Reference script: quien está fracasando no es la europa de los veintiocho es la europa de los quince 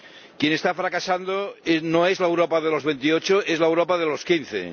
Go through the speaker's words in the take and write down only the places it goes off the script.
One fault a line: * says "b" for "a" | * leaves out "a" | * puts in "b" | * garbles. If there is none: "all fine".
all fine